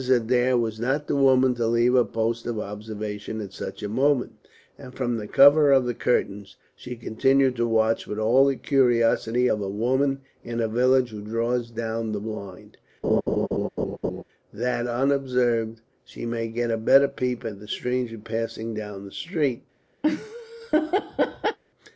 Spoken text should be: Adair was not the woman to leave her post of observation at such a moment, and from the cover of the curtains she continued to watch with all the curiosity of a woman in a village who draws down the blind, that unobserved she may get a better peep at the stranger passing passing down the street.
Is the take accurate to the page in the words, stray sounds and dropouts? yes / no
no